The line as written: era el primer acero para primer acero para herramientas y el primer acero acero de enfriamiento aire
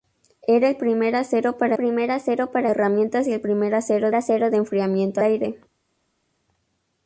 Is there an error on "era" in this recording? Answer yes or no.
no